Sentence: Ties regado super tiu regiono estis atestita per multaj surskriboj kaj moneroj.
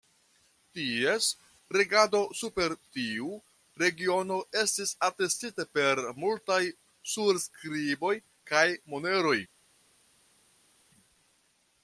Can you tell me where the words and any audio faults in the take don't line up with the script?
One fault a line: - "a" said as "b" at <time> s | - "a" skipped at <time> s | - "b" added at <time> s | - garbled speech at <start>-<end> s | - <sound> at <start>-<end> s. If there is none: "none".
none